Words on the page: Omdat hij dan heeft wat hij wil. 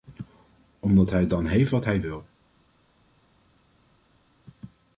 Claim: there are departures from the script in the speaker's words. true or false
false